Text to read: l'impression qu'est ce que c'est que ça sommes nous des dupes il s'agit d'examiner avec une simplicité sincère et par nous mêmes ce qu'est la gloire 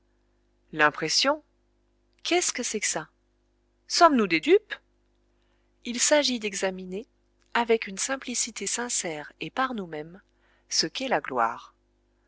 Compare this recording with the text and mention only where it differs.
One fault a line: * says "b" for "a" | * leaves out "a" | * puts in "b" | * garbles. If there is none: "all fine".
all fine